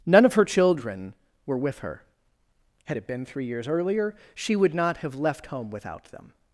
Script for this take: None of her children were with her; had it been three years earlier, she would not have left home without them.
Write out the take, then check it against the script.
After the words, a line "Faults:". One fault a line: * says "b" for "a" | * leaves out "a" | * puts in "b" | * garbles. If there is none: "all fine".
None of her children were with her; had it been three years earlier, she would not have left home without them.
Faults:
all fine